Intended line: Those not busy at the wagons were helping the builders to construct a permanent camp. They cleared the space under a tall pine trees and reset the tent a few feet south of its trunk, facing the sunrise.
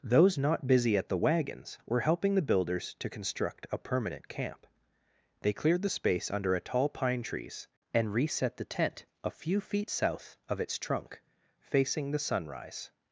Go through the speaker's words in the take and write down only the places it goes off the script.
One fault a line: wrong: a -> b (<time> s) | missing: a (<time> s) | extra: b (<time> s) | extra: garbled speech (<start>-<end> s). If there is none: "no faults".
no faults